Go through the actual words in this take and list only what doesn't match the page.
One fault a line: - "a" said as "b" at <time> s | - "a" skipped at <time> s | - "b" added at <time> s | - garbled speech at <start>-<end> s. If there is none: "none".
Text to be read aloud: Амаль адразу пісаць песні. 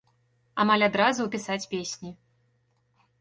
none